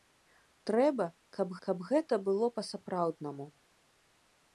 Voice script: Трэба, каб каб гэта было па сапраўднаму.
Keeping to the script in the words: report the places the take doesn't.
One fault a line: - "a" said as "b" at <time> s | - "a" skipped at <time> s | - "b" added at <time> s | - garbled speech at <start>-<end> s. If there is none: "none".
none